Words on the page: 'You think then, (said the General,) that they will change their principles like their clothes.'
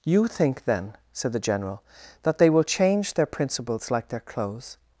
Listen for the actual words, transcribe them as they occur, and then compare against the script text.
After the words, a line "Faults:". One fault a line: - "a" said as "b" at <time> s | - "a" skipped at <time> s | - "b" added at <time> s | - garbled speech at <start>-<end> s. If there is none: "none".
'You think then, (said the General,) that they will change their principles like their clothes.'
Faults:
none